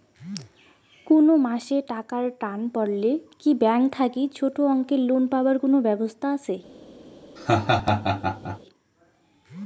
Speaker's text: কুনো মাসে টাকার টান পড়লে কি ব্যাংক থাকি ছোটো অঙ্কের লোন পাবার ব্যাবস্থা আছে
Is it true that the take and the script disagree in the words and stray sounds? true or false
true